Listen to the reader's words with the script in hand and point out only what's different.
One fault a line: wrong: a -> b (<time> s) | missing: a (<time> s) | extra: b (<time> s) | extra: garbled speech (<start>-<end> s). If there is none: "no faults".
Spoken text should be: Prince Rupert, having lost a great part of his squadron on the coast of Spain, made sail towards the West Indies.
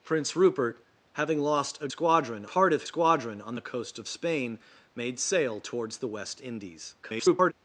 wrong: great -> squadron (1.9 s)
missing: his (2.9 s)
extra: garbled speech (7.0-7.5 s)